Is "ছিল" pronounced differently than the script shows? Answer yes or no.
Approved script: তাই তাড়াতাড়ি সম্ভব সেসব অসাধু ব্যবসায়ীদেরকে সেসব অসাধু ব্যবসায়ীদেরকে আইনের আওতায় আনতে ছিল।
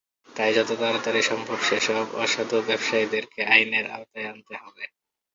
yes